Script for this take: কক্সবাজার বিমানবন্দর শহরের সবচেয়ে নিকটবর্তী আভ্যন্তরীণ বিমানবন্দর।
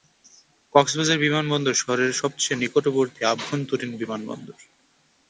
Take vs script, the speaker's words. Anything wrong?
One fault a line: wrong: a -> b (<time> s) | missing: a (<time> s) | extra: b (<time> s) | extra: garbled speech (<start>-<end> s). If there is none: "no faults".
no faults